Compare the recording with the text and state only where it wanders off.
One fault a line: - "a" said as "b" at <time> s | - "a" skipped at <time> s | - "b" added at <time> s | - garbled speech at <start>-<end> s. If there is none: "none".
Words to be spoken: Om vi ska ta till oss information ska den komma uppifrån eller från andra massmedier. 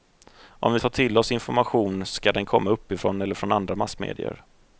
- "ska" skipped at 0.8 s